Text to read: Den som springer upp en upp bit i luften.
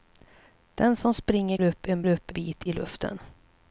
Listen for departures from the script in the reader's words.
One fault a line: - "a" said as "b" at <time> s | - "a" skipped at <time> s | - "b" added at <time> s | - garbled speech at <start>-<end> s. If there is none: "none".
none